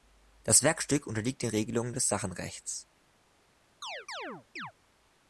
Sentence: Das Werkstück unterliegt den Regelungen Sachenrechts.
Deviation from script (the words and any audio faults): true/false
true